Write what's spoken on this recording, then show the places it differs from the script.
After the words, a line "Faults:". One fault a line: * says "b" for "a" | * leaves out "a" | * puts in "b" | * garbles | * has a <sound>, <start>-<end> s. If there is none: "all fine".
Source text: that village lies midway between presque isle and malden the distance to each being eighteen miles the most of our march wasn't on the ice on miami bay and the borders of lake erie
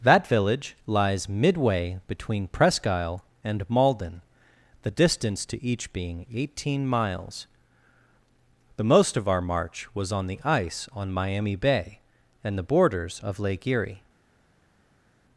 that village lies midway between presque isle and malden the distance to each being eighteen miles the most of our march was on the ice on miami bay and the borders of lake erie
Faults:
* says "was" for "wasn't"